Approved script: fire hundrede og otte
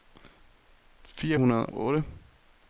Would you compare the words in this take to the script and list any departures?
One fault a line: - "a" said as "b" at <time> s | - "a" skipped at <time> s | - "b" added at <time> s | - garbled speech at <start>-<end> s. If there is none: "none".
- "og" skipped at 1.7 s